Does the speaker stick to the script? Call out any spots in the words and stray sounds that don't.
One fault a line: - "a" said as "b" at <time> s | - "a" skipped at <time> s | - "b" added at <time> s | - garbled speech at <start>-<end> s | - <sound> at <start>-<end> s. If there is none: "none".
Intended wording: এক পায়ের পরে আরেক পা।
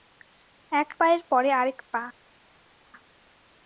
none